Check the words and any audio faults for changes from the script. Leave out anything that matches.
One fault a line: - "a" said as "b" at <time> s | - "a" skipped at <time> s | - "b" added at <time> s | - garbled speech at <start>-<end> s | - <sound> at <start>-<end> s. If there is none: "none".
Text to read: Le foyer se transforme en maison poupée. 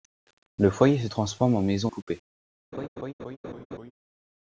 - laugh at 2.7-3.9 s